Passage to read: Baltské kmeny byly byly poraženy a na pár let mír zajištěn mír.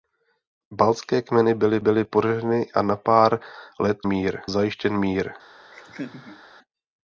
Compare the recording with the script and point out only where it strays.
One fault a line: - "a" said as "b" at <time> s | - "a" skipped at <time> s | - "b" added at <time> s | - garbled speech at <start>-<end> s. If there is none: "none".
none